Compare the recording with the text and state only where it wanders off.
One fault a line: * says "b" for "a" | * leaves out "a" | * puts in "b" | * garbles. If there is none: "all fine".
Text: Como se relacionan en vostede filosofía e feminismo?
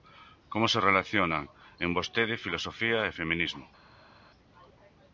all fine